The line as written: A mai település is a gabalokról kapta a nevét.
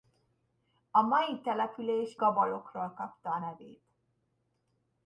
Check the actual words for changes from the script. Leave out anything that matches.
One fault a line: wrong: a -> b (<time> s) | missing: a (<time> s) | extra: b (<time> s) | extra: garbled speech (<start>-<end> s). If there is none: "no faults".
missing: is a (2.1 s)